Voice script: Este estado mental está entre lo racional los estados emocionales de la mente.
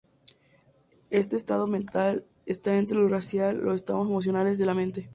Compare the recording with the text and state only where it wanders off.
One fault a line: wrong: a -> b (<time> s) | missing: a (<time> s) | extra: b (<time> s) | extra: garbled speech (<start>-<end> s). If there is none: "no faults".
no faults